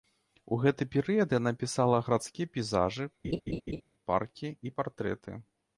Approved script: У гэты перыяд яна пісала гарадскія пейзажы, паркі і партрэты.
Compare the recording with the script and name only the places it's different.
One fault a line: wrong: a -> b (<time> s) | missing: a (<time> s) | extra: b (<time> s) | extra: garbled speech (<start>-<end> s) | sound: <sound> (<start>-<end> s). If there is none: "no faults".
sound: laugh (3.2-3.8 s)